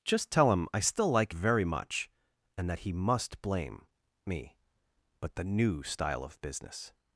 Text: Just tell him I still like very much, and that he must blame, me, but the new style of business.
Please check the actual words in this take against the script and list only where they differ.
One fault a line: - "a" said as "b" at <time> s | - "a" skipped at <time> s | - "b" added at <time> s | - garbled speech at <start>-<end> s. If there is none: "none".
none